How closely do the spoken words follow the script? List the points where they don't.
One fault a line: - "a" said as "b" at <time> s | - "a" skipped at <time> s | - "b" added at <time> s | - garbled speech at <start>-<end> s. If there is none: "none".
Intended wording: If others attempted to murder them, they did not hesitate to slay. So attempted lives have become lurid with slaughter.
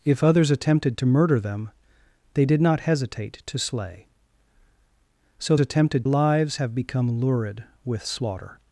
none